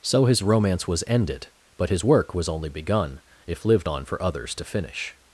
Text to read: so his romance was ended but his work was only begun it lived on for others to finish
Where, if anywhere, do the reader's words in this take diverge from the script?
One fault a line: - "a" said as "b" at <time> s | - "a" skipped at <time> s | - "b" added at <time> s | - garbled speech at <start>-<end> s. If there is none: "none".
- "it" said as "if" at 3.5 s